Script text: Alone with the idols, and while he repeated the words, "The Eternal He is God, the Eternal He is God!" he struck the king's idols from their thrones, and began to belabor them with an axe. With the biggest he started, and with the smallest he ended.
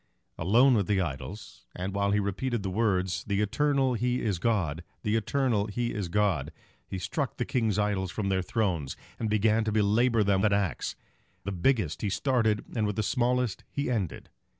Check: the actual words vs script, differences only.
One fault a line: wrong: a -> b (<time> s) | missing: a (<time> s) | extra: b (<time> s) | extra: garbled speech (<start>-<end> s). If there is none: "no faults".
missing: with (10.4 s)
missing: With (10.9 s)